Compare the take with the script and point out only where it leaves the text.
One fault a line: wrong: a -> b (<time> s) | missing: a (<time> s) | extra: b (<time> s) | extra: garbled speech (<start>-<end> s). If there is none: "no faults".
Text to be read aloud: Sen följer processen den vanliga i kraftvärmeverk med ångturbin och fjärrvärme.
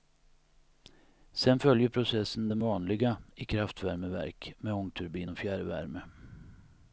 no faults